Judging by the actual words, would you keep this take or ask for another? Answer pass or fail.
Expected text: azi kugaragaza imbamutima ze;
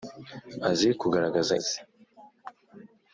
fail